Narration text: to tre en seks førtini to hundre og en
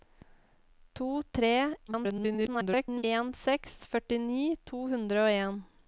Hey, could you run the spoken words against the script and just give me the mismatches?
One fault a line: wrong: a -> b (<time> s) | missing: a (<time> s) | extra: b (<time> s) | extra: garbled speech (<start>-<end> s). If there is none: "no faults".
extra: garbled speech (1.9-3.0 s)